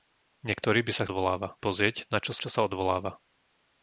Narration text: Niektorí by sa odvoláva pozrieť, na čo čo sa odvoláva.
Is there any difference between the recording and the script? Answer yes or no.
no